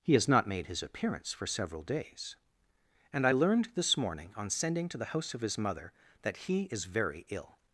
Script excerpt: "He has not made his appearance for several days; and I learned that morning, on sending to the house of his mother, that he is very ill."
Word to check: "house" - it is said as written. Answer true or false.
true